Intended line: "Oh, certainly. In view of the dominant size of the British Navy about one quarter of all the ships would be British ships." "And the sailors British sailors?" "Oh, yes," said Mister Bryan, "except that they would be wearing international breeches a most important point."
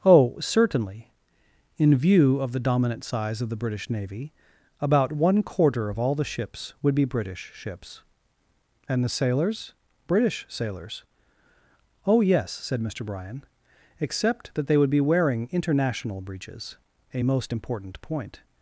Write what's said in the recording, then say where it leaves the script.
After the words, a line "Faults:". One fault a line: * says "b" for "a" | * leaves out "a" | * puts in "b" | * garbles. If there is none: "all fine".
"Oh, certainly. In view of the dominant size of the British Navy about one quarter of all the ships would be British ships." "And the sailors British sailors?" "Oh, yes," said Mister Bryan, "except that they would be wearing international breeches a most important point."
Faults:
all fine